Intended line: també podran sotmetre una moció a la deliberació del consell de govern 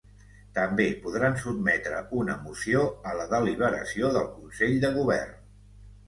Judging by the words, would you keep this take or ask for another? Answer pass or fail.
pass